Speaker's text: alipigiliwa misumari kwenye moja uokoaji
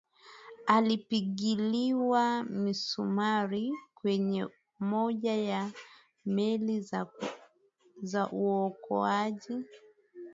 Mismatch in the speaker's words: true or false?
true